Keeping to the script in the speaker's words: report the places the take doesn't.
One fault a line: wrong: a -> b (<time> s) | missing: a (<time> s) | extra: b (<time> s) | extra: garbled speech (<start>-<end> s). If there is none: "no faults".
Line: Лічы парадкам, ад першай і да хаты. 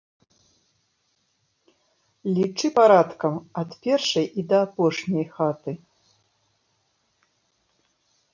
extra: апошняй (4.7 s)